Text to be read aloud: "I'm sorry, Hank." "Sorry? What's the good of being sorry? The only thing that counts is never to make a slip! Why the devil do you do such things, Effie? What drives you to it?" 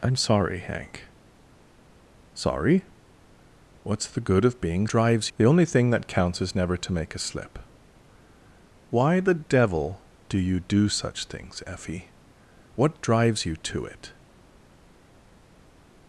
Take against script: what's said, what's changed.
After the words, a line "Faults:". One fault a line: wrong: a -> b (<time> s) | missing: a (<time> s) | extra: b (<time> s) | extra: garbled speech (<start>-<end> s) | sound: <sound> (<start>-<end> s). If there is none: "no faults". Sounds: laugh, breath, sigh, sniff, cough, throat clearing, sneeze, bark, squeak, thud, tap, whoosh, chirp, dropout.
"I'm sorry, Hank." "Sorry? What's the good of being drives? The only thing that counts is never to make a slip! Why the devil do you do such things, Effie? What drives you to it?"
Faults:
wrong: sorry -> drives (4.9 s)